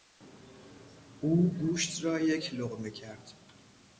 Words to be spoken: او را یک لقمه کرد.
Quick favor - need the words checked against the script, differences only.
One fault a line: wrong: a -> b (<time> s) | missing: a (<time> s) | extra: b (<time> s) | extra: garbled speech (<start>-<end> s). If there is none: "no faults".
extra: گوشت (1.5 s)